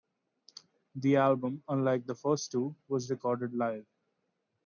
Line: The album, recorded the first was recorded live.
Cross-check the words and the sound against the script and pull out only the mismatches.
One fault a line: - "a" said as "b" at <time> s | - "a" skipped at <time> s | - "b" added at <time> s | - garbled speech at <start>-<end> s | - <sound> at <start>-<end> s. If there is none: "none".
- "recorded" said as "unlike" at 1.7 s
- "two" added at 2.5 s